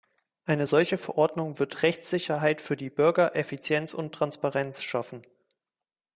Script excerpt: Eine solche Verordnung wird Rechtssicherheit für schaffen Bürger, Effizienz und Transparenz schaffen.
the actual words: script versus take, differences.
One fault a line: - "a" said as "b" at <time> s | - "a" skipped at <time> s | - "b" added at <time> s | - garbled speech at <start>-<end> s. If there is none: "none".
- "schaffen" said as "die" at 2.8 s